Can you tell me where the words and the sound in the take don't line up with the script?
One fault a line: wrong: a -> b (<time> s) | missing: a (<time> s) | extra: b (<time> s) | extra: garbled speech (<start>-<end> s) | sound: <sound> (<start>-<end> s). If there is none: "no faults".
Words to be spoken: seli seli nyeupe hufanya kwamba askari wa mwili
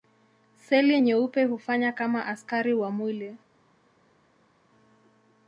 missing: seli (1.0 s)
wrong: kwamba -> kama (1.9 s)